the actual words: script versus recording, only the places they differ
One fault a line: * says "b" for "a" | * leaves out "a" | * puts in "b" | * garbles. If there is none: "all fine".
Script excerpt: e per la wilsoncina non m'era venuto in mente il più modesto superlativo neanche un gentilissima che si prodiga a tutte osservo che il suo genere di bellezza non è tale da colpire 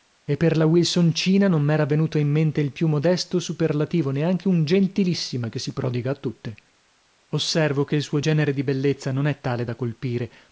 all fine